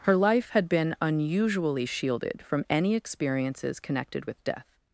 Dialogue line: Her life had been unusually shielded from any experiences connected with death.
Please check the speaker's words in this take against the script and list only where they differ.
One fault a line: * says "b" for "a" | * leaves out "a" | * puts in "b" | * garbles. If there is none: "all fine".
all fine